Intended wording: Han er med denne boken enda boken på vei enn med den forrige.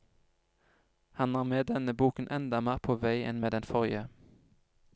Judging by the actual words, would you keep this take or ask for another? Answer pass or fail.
fail